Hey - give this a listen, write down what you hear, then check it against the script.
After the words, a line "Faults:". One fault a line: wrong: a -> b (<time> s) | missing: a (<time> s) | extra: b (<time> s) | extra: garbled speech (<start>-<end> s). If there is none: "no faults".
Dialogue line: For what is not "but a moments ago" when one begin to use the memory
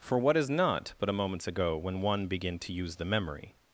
For what is not "but a moments ago" when one begin to use the memory
Faults:
no faults